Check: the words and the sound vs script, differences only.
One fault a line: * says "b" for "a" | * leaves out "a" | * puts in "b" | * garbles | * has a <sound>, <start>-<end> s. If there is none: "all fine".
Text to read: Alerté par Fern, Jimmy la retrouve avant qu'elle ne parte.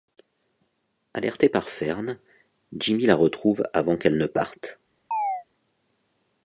* has a chirp, 5.1-5.4 s